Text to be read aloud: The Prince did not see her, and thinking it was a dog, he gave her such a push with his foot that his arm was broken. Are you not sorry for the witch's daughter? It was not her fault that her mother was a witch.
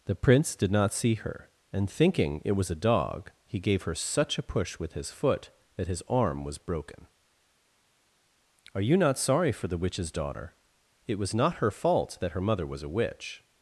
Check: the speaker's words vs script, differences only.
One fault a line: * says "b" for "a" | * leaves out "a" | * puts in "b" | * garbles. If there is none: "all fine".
all fine